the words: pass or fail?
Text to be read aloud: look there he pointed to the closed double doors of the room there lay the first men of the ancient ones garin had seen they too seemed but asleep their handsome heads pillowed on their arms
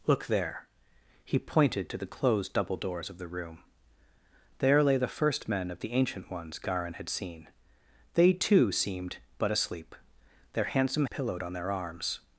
fail